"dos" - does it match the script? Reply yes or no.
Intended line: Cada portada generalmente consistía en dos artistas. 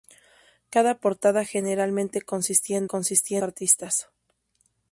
no